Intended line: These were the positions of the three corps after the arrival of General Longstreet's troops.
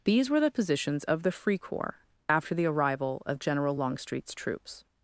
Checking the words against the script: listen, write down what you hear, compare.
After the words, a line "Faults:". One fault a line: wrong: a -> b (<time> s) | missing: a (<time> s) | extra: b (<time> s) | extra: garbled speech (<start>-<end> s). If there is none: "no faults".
These were the positions of the free corps after the arrival of General Longstreet's troops.
Faults:
wrong: three -> free (1.3 s)